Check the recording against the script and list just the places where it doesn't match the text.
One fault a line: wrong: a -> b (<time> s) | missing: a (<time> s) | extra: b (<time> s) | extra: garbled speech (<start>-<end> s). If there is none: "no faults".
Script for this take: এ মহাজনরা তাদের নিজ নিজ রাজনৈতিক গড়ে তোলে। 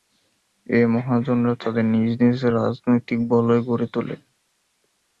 extra: বলয় (3.3 s)